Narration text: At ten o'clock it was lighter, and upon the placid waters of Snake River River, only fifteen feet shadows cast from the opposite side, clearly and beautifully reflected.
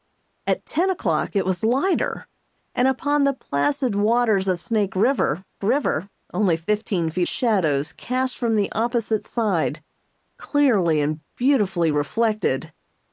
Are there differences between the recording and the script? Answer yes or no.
no